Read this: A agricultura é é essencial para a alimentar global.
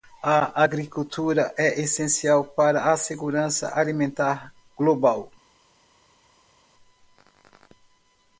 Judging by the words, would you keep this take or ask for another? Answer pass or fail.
fail